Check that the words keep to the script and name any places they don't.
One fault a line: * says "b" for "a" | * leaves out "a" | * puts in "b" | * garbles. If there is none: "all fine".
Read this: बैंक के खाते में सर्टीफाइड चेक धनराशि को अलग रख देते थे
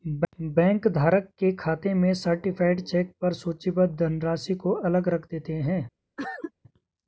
* puts in "धारक"
* puts in "पर सूचीबद्ध"
* says "हैं" for "थे"